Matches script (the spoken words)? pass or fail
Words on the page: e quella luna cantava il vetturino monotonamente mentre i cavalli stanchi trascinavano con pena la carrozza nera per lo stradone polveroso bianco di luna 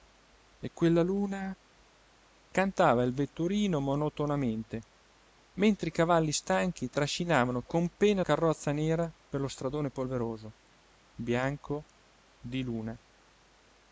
fail